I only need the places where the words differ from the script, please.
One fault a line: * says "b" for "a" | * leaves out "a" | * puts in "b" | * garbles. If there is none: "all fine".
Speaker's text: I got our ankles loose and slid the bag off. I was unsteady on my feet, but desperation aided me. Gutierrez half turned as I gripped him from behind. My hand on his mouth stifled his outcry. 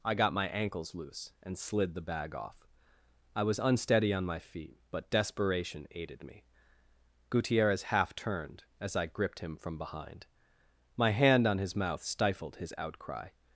* says "my" for "our"